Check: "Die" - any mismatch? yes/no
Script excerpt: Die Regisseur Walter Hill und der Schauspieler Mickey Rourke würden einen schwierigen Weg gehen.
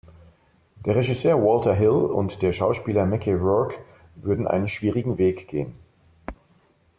yes